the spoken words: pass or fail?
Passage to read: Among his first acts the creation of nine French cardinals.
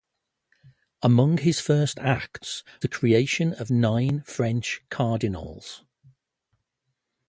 pass